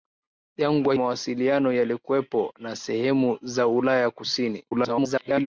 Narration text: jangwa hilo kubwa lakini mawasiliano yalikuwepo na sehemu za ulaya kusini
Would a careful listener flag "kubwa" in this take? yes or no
yes